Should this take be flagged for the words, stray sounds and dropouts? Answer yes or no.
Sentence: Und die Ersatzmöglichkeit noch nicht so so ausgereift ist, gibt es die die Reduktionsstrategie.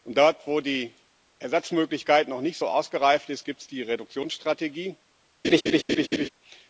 yes